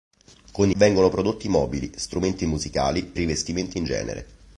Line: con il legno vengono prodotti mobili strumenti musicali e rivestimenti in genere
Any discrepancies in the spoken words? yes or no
yes